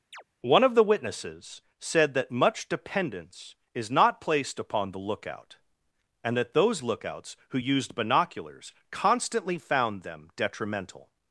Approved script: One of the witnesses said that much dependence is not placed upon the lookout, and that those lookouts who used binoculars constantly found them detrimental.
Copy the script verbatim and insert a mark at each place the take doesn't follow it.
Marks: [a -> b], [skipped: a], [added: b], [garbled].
One of the witnesses said that much dependence is not placed upon the lookout, and that those lookouts who used binoculars constantly found them detrimental.